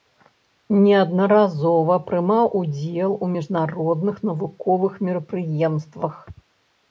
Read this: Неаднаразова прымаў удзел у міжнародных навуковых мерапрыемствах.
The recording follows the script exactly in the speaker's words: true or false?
true